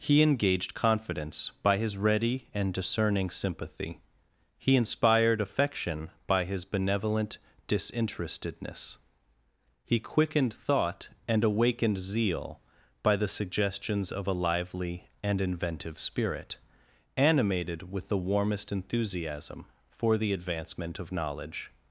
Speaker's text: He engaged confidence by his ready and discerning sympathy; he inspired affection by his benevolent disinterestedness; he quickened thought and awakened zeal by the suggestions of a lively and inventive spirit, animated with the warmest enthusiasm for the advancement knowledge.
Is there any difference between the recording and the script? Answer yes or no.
yes